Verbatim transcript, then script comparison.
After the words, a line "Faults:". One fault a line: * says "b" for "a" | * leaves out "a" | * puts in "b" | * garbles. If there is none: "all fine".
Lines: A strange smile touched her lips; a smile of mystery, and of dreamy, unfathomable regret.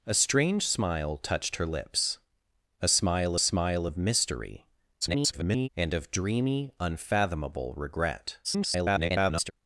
A strange smile touched her lips; a smile smile of mystery, [garbled] and of dreamy, unfathomable regret. [garbled]
Faults:
* puts in "smile"
* garbles
* garbles